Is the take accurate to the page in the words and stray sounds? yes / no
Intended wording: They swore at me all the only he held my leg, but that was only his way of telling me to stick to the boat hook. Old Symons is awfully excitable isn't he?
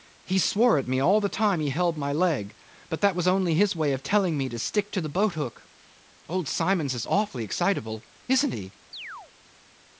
no